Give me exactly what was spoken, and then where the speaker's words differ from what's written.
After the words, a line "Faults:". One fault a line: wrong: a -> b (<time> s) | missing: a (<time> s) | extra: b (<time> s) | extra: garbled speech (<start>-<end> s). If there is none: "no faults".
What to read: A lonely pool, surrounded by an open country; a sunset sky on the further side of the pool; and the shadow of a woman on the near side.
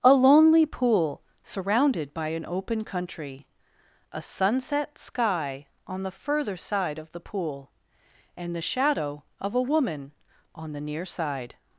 A lonely pool, surrounded by an open country; a sunset sky on the further side of the pool; and the shadow of a woman on the near side.
Faults:
no faults